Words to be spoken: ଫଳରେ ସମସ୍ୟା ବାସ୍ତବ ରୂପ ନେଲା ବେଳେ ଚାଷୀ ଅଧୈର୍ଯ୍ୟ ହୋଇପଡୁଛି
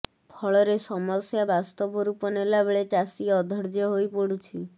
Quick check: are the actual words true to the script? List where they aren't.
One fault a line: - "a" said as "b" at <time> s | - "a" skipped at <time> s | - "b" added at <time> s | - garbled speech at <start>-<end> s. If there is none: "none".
none